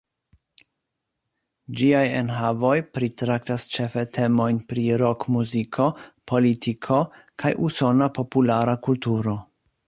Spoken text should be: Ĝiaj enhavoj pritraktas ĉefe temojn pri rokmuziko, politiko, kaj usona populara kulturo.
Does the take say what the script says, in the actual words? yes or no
yes